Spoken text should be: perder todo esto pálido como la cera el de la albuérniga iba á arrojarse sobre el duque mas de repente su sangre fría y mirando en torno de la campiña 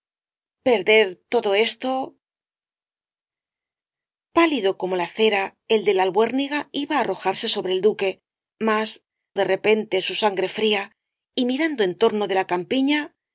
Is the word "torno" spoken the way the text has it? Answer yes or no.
yes